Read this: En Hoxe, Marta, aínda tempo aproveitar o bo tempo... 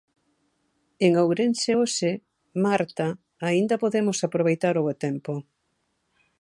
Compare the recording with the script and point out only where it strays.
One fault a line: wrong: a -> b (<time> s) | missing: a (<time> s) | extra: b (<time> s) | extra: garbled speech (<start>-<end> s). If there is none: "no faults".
extra: Ourense (1.2 s)
wrong: tempo -> podemos (3.8 s)